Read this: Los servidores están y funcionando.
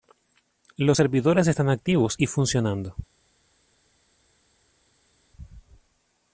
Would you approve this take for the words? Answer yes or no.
no